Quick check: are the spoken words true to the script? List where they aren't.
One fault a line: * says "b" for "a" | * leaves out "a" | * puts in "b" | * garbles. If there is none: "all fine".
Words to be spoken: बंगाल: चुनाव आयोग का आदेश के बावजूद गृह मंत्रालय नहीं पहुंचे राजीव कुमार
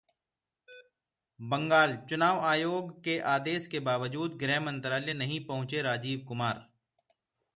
* says "के" for "का"